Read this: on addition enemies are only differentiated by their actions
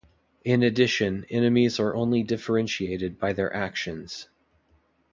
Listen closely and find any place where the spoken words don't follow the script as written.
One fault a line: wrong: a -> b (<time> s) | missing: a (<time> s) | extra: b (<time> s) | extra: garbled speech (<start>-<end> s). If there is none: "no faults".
wrong: on -> in (0.4 s)